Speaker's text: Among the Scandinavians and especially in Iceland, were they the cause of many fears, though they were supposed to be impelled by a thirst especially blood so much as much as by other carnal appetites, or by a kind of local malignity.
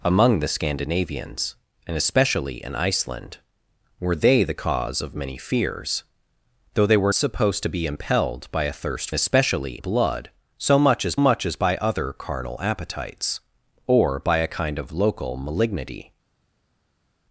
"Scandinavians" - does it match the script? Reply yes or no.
yes